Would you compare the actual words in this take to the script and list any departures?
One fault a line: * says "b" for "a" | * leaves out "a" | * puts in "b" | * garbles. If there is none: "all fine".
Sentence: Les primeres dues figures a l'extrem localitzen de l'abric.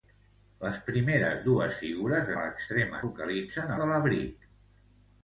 all fine